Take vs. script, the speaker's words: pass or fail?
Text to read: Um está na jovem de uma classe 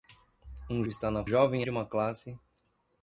pass